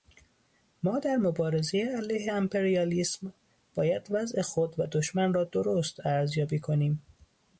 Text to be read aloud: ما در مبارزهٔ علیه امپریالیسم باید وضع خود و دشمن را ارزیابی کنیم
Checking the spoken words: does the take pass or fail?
fail